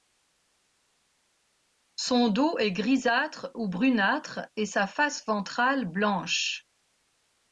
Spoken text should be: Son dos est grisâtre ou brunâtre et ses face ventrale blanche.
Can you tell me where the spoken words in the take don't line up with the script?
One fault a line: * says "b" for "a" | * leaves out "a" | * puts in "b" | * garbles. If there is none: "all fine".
* says "sa" for "ses"